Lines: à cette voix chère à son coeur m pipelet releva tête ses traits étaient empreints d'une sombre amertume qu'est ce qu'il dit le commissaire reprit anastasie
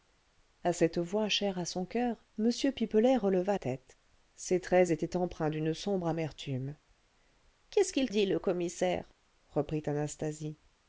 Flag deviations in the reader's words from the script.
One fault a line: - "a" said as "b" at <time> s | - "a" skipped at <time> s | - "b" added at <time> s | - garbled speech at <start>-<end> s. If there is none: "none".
none